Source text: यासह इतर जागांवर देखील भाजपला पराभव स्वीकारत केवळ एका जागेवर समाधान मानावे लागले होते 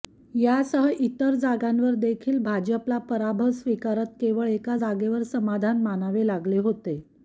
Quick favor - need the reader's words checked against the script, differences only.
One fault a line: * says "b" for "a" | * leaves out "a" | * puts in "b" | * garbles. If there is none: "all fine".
all fine